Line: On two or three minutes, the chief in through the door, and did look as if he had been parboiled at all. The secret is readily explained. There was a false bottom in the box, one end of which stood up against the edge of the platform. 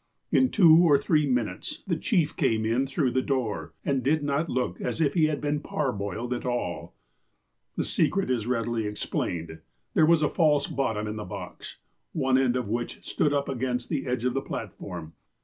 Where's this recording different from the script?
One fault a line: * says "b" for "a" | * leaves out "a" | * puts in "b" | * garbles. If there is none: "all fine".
* says "In" for "On"
* puts in "came"
* puts in "not"